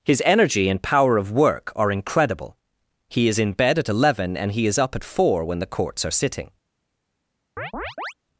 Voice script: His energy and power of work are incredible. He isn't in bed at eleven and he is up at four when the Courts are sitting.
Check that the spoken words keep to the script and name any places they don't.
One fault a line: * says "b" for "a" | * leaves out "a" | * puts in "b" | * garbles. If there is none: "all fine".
* says "is" for "isn't"